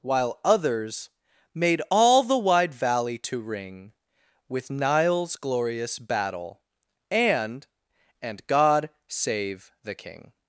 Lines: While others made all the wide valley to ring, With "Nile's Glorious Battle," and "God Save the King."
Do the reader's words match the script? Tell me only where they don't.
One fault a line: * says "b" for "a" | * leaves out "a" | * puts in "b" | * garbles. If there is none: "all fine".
* puts in "and"